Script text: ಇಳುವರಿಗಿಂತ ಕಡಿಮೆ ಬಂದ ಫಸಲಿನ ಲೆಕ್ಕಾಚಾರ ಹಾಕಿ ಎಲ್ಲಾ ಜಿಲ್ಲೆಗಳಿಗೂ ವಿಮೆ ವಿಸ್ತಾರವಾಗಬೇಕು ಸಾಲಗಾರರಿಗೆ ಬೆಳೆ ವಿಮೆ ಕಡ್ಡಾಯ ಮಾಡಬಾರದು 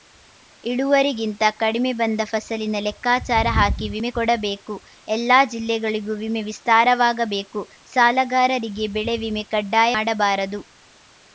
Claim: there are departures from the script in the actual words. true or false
true